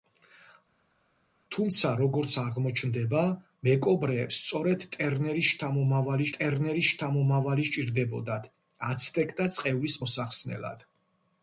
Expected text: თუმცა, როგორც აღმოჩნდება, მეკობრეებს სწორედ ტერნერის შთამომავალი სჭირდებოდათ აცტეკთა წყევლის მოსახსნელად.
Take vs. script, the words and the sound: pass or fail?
fail